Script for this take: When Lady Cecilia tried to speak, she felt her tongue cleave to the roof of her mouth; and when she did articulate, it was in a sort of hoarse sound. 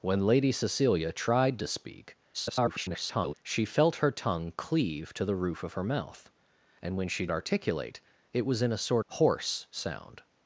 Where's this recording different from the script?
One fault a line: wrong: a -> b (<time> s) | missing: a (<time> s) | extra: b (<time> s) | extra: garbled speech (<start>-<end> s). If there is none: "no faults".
extra: garbled speech (2.3-3.3 s)
missing: did (7.3 s)
missing: of (9.0 s)